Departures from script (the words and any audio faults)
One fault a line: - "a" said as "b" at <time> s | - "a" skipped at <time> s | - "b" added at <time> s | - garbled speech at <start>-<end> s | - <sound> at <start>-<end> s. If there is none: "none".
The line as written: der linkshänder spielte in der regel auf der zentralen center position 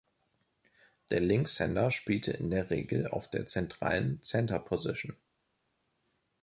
none